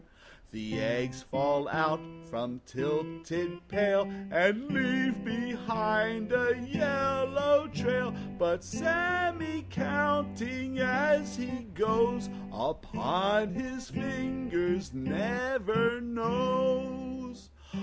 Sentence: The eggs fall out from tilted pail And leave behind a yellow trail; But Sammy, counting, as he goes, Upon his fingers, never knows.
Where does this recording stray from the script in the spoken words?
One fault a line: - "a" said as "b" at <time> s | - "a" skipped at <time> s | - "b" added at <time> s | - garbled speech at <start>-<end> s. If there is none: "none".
none